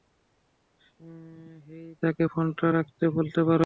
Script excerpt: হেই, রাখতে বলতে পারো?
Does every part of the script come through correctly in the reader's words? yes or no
no